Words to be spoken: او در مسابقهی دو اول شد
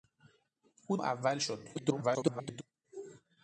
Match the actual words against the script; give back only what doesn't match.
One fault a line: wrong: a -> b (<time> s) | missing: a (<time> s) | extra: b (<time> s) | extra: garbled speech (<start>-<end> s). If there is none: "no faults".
missing: در مسابقهی دو (1.0 s)
extra: garbled speech (1.7-2.6 s)